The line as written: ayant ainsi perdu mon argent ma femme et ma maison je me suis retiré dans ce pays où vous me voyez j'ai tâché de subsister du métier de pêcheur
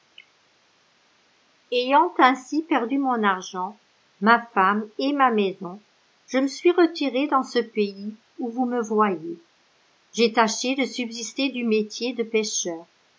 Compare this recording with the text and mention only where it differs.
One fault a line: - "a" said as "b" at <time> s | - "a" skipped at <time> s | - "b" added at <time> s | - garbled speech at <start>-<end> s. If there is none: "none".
none